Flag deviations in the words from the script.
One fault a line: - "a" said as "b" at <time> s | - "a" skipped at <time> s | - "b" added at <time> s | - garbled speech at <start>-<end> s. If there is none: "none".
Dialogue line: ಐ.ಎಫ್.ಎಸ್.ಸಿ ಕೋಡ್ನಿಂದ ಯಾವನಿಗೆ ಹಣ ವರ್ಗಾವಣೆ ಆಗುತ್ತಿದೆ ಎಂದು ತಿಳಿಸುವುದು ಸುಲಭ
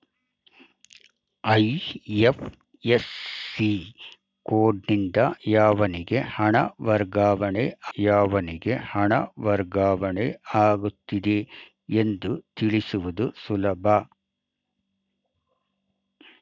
- "ಯಾವನಿಗೆ ಹಣ ವರ್ಗಾವಣೆ" added at 8.0 s